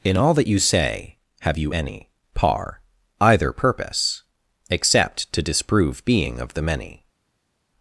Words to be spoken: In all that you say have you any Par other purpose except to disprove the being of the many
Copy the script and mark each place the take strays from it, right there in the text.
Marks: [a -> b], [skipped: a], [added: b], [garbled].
In all that you say have you any Par [other -> either] purpose except to disprove [skipped: the] being of the many